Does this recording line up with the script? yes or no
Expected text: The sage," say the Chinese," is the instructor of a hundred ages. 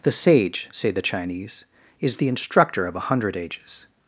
yes